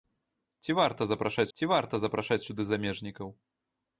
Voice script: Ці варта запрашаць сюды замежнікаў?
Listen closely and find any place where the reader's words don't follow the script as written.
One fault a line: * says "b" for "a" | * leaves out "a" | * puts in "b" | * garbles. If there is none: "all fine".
* puts in "ці варта запрашаць"